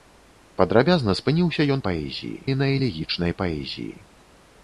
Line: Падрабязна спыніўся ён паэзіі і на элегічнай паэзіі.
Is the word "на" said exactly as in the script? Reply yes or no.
yes